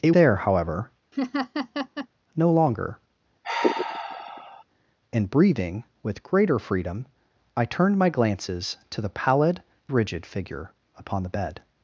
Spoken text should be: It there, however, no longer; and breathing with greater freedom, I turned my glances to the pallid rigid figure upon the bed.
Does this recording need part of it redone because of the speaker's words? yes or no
no